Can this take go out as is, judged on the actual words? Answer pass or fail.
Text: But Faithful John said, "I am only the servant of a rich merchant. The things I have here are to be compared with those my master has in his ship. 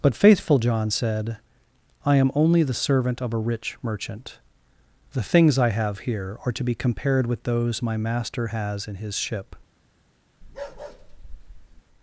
pass